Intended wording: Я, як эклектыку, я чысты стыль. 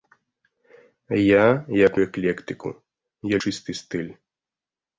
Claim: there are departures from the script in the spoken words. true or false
false